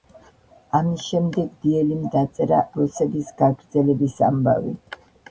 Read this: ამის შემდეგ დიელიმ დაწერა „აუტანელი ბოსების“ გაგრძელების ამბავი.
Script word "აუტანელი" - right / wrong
wrong